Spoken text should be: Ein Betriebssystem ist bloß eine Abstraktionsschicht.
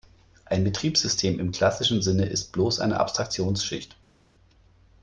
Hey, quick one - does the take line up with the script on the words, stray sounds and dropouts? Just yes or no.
no